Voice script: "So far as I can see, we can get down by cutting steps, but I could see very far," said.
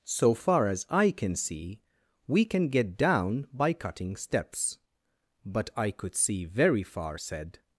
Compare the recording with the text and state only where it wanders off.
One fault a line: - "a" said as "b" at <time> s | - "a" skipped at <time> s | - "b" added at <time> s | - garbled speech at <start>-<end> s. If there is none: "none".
none